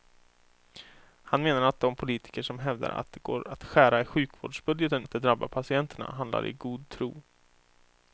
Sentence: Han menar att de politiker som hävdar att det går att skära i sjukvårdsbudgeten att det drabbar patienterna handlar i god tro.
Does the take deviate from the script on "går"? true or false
false